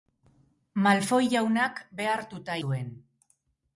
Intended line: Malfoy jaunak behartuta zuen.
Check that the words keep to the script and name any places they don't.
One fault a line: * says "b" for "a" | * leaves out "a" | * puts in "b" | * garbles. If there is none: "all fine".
all fine